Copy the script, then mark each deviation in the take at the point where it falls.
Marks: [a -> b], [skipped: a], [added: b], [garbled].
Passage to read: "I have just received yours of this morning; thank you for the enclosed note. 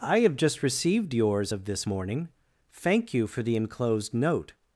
"I have just received yours of this morning; thank you for the enclosed note.